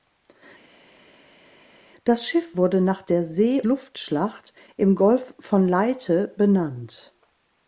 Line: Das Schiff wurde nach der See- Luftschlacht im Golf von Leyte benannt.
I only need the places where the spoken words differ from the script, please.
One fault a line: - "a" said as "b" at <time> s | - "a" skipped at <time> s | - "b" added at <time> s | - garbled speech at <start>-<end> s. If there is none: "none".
none